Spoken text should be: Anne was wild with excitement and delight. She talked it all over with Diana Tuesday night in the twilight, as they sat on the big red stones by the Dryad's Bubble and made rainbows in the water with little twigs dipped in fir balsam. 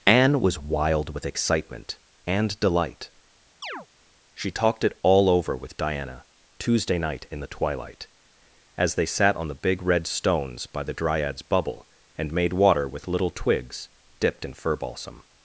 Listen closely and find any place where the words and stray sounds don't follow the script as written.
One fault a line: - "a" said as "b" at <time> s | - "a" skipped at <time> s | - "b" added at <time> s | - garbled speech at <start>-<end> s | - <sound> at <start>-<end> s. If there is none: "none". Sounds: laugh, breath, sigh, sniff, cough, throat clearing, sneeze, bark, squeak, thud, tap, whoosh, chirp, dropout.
- chirp at 3.6-3.9 s
- "rainbows in the" skipped at 12.5 s